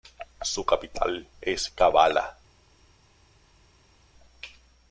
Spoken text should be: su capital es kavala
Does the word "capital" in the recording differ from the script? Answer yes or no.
no